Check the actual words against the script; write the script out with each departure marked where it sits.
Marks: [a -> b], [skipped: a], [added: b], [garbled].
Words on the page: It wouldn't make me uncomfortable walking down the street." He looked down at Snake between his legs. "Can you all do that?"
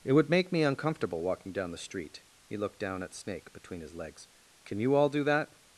It [wouldn't -> would] make me uncomfortable walking down the street." He looked down at Snake between his legs. "Can you all do that?"